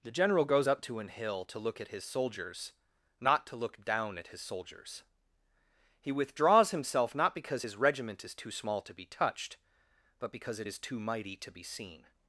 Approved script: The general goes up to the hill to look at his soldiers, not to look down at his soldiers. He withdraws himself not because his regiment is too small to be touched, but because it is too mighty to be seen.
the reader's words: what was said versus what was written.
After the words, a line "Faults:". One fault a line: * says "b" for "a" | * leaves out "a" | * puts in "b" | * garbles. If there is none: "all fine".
The general goes up to an hill to look at his soldiers, not to look down at his soldiers. He withdraws himself not because his regiment is too small to be touched, but because it is too mighty to be seen.
Faults:
* says "an" for "the"